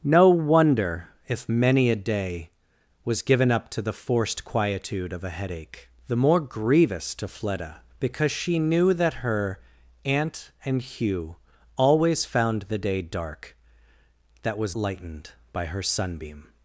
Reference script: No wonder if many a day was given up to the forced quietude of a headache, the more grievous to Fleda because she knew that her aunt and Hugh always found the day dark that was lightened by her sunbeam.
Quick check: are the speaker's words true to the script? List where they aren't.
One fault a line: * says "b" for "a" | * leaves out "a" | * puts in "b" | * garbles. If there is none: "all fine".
all fine